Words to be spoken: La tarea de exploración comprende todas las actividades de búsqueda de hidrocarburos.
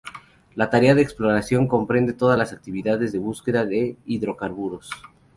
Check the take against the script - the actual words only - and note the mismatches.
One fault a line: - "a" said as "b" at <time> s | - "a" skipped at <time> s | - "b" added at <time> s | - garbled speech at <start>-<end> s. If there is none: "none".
none